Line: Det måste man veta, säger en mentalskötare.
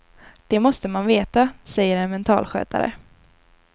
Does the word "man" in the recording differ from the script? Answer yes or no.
no